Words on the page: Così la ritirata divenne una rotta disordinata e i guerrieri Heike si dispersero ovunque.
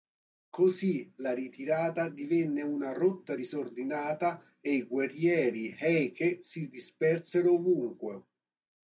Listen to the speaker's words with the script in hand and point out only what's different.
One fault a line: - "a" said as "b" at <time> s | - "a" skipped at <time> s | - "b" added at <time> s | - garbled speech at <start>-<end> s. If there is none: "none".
none